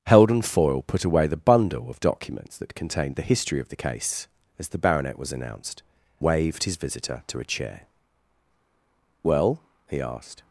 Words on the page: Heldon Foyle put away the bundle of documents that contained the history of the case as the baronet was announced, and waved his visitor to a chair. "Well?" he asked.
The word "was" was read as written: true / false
true